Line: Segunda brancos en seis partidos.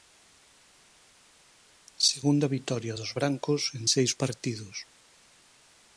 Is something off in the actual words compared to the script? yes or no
yes